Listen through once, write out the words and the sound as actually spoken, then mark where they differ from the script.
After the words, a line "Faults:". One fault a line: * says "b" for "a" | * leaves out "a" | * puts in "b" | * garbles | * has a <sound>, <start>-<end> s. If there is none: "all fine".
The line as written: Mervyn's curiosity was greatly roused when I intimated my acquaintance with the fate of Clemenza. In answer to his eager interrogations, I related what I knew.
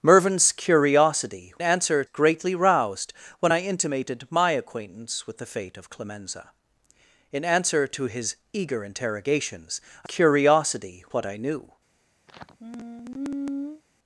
Mervyn's curiosity answer greatly roused when I intimated my acquaintance with the fate of Clemenza. In answer to his eager interrogations, I curiosity what I knew.
Faults:
* says "answer" for "was"
* says "curiosity" for "related"
* has a sigh, 12.3-13.8 s